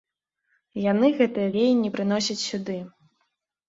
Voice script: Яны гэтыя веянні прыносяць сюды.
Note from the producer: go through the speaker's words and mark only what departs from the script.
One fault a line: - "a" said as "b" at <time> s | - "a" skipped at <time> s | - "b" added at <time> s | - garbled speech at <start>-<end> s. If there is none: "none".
none